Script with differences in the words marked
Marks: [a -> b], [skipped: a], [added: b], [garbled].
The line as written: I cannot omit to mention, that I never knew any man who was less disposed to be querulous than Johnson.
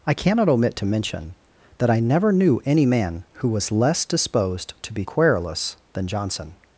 I cannot omit to mention, that I never knew any man who was less disposed to be querulous than Johnson.